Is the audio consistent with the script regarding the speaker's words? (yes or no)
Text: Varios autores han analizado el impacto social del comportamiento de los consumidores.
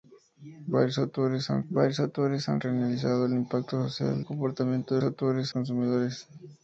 no